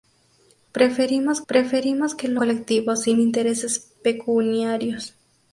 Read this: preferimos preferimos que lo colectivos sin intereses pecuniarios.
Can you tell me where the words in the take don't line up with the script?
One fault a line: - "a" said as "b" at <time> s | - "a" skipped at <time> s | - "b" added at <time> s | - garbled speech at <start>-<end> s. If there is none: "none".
none